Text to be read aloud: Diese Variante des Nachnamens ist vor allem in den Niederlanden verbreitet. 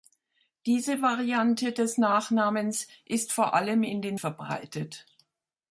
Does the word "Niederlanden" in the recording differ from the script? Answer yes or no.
yes